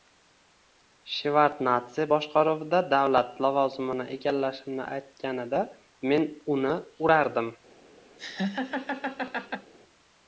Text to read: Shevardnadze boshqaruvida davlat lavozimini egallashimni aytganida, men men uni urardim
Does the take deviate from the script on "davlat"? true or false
false